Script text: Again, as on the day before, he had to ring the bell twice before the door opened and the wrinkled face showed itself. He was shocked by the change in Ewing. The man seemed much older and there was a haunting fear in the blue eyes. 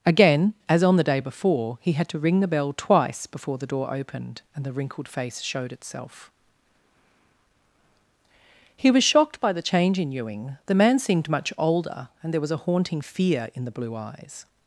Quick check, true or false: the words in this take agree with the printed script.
true